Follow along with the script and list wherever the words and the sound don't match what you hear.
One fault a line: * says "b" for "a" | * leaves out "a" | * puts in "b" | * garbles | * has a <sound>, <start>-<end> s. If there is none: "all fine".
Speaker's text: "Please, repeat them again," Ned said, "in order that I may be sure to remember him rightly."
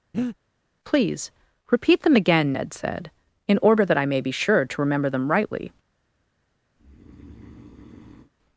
* has a breath, 0.1-0.4 s
* says "them" for "him"
* has a breath, 6.8-8.3 s